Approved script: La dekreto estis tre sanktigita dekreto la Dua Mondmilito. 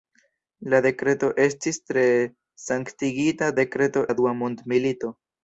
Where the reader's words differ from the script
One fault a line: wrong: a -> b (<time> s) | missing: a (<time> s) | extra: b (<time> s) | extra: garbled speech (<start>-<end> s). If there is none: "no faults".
no faults